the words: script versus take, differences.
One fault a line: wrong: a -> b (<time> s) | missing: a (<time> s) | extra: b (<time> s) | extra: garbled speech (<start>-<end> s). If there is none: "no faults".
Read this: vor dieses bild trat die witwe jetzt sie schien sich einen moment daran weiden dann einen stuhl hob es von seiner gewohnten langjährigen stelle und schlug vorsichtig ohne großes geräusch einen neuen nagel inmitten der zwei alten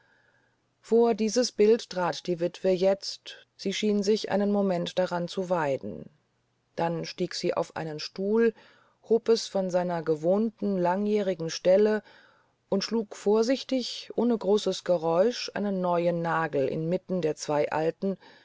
extra: zu (5.3 s)
extra: stieg sie auf (7.0 s)